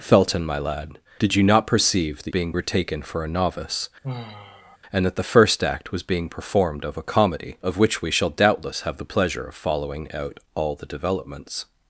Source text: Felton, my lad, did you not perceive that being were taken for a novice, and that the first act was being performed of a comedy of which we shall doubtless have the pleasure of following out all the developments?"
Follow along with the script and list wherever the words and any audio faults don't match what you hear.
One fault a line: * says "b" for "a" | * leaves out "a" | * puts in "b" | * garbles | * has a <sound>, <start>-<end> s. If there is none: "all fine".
* has a sigh, 4.0-4.8 s